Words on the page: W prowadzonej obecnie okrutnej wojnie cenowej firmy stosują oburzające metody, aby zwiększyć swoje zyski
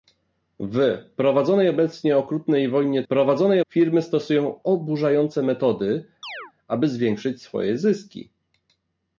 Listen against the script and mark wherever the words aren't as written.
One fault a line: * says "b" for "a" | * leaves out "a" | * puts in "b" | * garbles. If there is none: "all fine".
* says "prowadzonej" for "cenowej"